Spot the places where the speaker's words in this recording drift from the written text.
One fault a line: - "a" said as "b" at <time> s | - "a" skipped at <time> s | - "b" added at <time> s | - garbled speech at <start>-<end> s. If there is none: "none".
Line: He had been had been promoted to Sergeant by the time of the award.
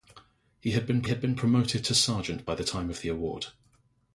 none